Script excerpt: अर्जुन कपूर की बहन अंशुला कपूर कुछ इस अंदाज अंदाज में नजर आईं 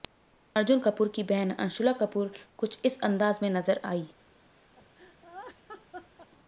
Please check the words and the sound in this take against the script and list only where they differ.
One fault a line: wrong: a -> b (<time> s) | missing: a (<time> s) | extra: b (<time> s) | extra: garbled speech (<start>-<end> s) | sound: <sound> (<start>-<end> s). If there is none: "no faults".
missing: अंदाज (3.4 s)
sound: laugh (4.8-6.3 s)